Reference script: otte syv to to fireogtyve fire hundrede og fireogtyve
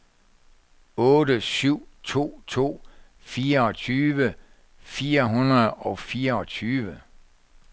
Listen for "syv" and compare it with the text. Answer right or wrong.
right